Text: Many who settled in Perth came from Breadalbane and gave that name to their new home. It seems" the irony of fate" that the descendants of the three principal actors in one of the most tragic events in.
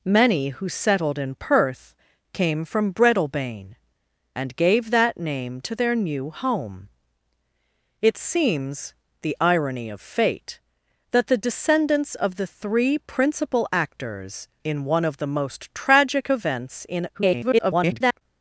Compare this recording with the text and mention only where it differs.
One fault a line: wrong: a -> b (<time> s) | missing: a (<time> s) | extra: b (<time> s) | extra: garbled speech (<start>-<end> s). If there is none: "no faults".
extra: garbled speech (17.1-18.2 s)